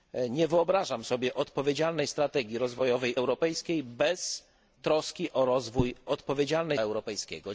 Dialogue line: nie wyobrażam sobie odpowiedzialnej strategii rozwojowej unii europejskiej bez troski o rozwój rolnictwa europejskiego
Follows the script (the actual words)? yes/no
no